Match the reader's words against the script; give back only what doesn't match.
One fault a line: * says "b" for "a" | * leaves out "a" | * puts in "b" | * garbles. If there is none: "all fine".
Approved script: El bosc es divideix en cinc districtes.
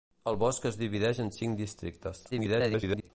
* garbles